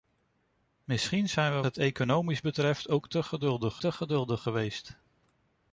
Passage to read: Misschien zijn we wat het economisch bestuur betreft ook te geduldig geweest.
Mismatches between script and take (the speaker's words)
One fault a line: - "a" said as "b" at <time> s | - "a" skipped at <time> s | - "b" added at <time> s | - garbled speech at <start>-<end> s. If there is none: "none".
- "wat" skipped at 1.6 s
- "bestuur" skipped at 2.4 s
- "te geduldig" added at 3.8 s